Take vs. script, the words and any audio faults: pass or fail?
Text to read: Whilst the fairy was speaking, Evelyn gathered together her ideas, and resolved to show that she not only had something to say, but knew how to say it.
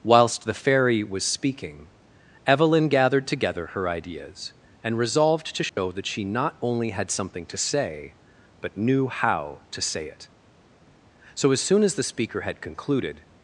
fail